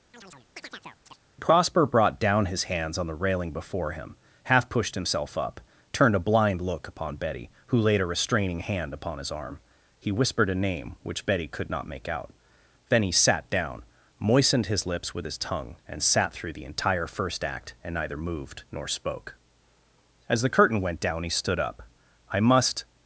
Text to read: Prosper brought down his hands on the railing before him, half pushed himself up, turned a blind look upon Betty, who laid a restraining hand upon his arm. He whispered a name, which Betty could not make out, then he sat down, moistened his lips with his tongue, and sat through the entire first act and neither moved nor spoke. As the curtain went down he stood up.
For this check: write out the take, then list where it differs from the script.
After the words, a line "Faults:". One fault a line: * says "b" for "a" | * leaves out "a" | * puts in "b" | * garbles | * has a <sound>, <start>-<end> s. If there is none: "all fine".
Prosper brought down his hands on the railing before him, half pushed himself up, turned a blind look upon Betty, who laid a restraining hand upon his arm. He whispered a name, which Betty could not make out, then he sat down, moistened his lips with his tongue, and sat through the entire first act and neither moved nor spoke. As the curtain went down he stood up. "I must
Faults:
* has a chirp, 0.1-1.2 s
* puts in "I must"